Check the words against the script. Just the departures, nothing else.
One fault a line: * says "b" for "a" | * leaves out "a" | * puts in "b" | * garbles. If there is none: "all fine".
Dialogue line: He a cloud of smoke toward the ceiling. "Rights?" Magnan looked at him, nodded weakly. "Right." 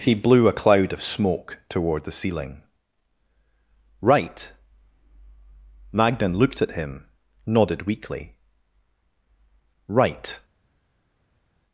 * puts in "blew"
* says "Right" for "Rights"